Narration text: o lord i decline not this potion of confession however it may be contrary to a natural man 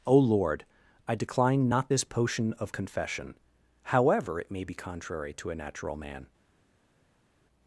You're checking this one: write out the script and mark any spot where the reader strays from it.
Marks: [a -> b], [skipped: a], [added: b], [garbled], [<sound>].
o lord i decline not this potion of confession however it may be contrary to a natural man